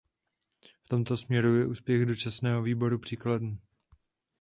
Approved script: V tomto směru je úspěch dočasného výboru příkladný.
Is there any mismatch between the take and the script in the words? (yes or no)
no